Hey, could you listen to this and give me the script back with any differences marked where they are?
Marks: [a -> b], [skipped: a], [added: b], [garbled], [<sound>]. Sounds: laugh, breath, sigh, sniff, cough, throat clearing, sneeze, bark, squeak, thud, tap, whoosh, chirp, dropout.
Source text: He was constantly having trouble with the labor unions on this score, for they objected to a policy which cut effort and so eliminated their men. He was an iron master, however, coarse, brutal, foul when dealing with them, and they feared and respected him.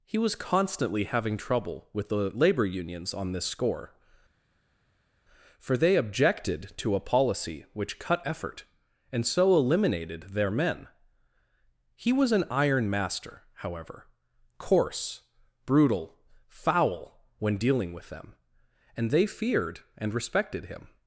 He was constantly having trouble with the labor unions on this score, for they objected to a policy which cut effort and so eliminated their men. He was an iron master, however, coarse, brutal, foul when dealing with them, and they feared and respected him.